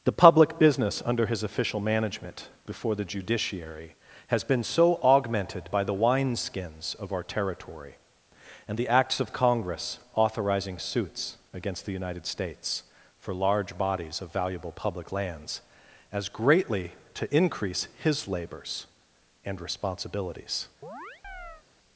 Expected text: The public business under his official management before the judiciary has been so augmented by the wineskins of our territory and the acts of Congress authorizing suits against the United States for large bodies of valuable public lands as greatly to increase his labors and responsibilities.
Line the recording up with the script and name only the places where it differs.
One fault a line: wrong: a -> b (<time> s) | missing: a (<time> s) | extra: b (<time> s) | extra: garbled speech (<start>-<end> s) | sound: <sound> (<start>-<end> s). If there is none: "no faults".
sound: chirp (20.8-21.6 s)